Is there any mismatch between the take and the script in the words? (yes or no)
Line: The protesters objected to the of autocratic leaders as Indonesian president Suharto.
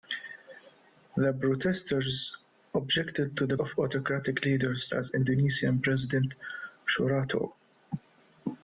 no